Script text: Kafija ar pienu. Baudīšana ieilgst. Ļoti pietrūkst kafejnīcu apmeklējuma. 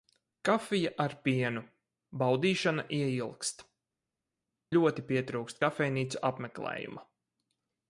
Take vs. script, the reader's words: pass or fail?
pass